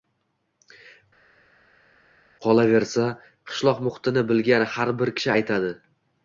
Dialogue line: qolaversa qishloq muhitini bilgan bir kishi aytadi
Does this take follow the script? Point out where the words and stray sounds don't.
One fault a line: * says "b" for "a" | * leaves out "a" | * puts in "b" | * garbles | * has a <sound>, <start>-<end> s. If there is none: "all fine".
* puts in "har"